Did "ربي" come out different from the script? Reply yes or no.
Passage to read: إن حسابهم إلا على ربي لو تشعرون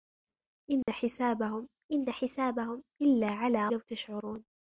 yes